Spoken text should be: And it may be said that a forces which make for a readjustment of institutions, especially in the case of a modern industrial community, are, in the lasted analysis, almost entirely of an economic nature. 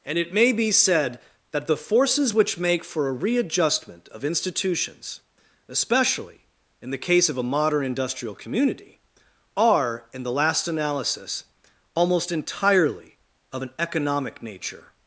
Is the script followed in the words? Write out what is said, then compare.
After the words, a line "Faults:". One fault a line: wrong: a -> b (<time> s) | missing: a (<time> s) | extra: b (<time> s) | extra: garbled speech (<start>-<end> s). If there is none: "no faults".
And it may be said that the forces which make for a readjustment of institutions, especially in the case of a modern industrial community, are, in the last analysis, almost entirely of an economic nature.
Faults:
wrong: a -> the (1.7 s)
wrong: lasted -> last (10.3 s)